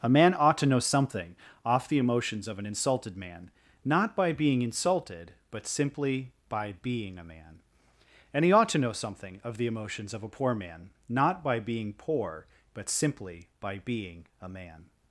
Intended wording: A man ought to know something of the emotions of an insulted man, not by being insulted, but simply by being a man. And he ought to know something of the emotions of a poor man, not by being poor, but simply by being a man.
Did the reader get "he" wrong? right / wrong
right